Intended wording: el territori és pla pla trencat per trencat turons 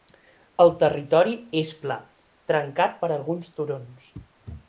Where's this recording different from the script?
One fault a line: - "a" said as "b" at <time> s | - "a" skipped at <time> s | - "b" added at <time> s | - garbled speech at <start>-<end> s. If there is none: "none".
- "pla" skipped at 2.0 s
- "trencat" said as "alguns" at 3.2 s